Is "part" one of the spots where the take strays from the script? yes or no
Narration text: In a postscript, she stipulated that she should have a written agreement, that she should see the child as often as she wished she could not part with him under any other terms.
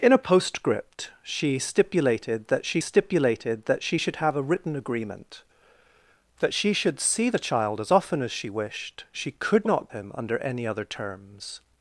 yes